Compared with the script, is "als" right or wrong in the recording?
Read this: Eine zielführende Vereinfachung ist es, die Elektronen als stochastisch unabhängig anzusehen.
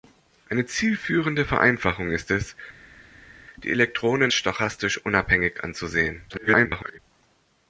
wrong